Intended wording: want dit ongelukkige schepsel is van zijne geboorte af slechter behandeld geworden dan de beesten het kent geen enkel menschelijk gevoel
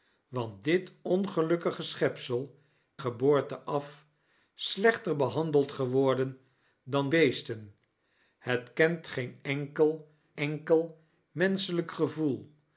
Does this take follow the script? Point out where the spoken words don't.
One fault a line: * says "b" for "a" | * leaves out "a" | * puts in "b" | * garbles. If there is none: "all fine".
* leaves out "is van zijne"
* leaves out "de"
* puts in "enkel"